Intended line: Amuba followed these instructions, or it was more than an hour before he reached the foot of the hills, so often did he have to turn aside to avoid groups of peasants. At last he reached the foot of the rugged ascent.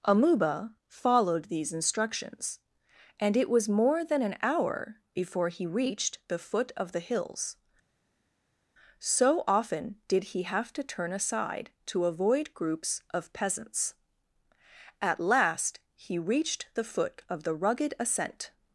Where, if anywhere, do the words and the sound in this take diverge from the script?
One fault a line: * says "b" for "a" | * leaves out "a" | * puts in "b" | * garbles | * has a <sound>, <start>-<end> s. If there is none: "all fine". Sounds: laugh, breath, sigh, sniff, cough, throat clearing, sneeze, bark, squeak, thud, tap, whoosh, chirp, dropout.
* says "and" for "or"